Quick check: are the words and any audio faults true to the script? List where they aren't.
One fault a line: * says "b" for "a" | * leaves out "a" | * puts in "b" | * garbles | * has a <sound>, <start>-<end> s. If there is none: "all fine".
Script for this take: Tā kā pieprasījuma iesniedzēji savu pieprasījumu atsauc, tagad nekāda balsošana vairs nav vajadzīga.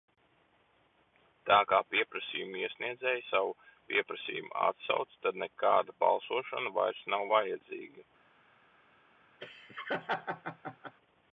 * says "tad" for "tagad"
* has a laugh, 9.4-10.9 s